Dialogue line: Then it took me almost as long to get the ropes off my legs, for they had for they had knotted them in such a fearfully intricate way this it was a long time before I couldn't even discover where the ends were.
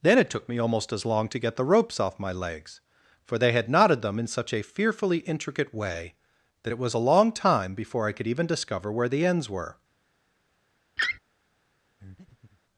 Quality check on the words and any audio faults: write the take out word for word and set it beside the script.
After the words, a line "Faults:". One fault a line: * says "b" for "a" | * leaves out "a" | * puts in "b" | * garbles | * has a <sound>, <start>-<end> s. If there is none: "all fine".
Then it took me almost as long to get the ropes off my legs, for they had knotted them in such a fearfully intricate way that it was a long time before I could even discover where the ends were.
Faults:
* leaves out "for they had"
* says "that" for "this"
* says "could" for "couldn't"
* has a laugh, 11.0-11.2 s
* has a breath, 12.0-12.6 s